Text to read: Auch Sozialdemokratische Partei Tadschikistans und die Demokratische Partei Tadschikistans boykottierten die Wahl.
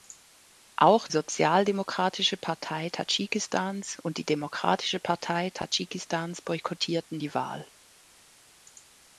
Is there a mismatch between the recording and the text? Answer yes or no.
no